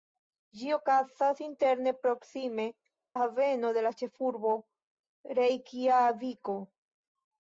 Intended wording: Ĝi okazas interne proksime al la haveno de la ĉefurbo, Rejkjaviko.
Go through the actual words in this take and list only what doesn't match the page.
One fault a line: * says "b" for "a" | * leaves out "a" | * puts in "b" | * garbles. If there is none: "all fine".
* leaves out "al"